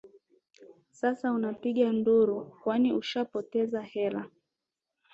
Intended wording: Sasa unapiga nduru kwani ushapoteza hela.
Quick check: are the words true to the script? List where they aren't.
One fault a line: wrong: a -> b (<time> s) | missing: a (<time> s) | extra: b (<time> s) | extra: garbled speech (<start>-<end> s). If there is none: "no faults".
no faults